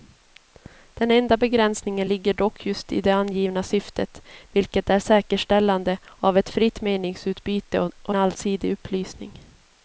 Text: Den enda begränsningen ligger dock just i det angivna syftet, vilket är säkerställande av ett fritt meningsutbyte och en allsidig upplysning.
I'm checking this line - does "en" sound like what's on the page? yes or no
no